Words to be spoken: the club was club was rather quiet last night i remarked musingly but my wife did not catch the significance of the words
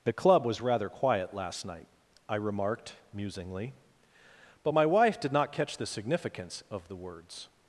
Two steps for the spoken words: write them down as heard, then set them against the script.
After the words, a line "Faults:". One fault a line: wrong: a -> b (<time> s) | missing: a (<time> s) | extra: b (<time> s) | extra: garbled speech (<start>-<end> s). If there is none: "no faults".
the club was rather quiet last night i remarked musingly but my wife did not catch the significance of the words
Faults:
missing: club was (0.6 s)